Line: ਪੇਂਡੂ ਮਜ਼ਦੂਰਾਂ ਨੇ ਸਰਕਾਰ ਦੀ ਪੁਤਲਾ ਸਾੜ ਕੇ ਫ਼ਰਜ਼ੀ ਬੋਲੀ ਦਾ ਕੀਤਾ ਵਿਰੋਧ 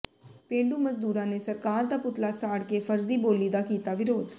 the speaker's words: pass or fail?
fail